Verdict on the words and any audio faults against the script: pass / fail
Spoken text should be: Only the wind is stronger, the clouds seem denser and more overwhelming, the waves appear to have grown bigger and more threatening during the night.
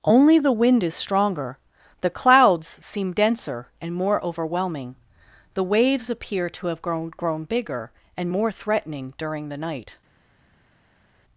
fail